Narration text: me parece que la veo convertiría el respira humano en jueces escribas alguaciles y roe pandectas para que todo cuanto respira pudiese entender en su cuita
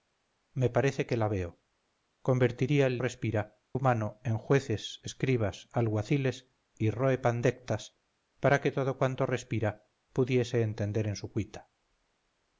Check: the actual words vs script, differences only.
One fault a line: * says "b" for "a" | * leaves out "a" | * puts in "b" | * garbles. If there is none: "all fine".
all fine